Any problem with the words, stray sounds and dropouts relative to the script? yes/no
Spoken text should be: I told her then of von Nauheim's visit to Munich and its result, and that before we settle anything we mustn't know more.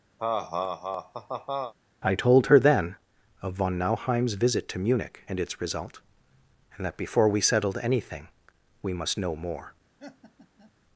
yes